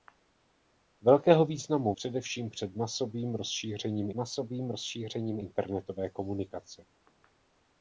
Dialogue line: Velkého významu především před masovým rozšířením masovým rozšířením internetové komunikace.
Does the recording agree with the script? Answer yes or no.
yes